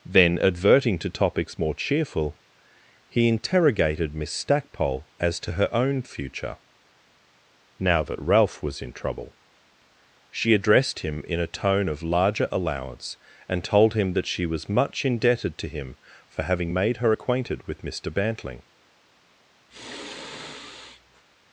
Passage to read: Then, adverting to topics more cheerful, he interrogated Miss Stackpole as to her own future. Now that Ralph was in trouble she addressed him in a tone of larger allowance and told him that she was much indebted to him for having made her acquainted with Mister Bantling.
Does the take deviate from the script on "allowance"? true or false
false